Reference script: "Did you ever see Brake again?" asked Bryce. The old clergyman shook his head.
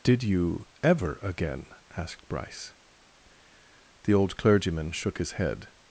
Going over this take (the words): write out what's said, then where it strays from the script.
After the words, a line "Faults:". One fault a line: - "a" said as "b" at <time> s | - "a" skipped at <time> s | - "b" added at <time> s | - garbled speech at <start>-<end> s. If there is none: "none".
"Did you ever again?" asked Bryce. The old clergyman shook his head.
Faults:
- "see Brake" skipped at 1.2 s